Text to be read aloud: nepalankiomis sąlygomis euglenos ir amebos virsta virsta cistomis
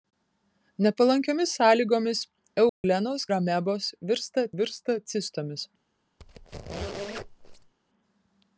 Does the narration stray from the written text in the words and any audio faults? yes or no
yes